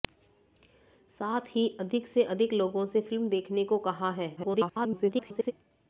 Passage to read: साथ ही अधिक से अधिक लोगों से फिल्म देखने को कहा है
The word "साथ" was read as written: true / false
true